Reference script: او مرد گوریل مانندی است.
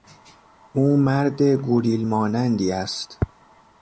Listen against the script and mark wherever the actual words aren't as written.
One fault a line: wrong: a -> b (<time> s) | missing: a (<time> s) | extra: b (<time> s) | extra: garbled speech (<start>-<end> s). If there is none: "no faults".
no faults